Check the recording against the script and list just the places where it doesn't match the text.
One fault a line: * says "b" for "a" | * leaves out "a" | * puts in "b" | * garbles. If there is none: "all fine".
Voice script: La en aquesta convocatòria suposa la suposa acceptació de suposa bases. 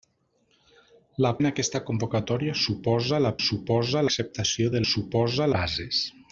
all fine